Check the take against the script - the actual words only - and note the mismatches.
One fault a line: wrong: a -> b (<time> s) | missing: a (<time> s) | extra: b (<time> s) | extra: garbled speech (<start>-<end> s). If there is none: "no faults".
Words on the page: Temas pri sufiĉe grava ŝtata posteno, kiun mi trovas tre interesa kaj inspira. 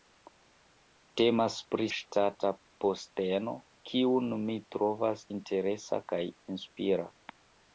missing: sufiĉe grava (1.9 s)
missing: tre (5.3 s)